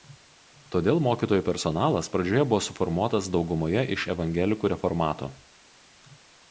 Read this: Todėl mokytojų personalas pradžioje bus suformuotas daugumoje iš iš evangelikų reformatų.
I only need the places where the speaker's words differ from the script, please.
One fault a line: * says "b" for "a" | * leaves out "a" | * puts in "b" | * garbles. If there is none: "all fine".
* says "buvo" for "bus"
* leaves out "iš"